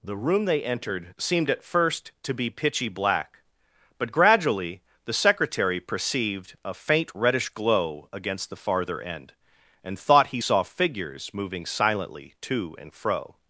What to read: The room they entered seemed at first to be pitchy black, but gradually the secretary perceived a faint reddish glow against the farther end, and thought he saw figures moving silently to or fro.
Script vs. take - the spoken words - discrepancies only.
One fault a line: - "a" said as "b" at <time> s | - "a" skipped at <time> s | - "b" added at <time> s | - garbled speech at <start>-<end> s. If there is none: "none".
- "or" said as "and" at 12.8 s